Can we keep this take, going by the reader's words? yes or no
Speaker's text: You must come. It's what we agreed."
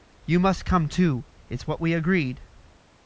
no